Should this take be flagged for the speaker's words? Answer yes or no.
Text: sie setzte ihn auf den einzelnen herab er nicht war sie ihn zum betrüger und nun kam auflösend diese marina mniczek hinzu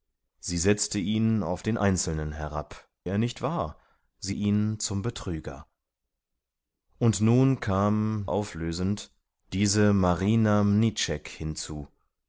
no